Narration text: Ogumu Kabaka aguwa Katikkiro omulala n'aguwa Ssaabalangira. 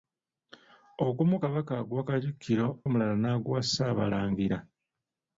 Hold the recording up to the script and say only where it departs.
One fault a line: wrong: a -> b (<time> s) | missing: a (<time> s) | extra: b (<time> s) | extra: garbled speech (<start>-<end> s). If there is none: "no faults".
no faults